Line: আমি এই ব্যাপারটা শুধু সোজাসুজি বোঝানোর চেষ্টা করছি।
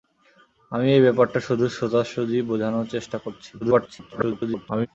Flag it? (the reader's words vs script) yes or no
yes